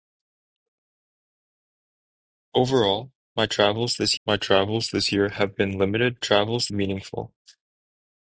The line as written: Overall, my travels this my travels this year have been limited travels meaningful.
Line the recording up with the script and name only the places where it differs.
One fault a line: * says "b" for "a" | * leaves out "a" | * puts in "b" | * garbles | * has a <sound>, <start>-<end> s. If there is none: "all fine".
all fine